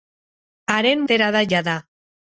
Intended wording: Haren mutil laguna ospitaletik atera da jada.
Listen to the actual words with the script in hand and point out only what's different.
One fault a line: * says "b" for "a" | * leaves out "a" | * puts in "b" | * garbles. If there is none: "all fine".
* leaves out "mutil laguna ospitaletik"